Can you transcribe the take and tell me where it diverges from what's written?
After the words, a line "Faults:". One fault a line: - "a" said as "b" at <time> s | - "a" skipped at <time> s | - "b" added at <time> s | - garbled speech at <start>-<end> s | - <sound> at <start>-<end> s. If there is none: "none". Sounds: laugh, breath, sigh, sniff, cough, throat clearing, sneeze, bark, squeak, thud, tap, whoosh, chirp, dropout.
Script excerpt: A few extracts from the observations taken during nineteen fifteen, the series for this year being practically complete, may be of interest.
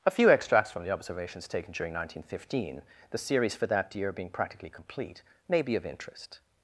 A few extracts from the observations taken during nineteen fifteen, the series for that year being practically complete, may be of interest.
Faults:
- "this" said as "that" at 3.7 s